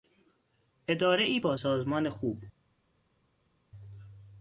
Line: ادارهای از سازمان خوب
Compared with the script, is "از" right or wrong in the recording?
wrong